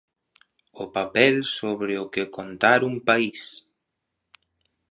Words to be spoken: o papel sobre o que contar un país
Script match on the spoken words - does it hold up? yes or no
yes